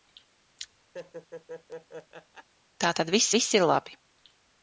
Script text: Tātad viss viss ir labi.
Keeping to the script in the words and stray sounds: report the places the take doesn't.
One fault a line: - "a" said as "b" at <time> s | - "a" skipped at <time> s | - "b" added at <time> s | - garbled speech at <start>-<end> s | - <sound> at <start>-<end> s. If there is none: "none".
- laugh at 0.9-2.5 s